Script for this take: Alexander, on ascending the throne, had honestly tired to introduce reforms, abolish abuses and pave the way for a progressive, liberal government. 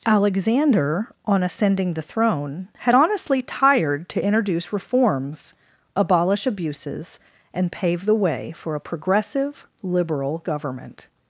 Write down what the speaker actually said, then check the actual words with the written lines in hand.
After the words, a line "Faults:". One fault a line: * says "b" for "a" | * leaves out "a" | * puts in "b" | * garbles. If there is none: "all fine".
Alexander, on ascending the throne, had honestly tired to introduce reforms, abolish abuses and pave the way for a progressive, liberal government.
Faults:
all fine